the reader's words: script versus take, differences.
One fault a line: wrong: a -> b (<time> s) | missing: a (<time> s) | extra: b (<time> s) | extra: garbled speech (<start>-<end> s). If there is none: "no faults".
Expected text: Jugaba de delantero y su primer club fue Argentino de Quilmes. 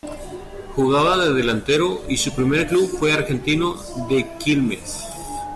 no faults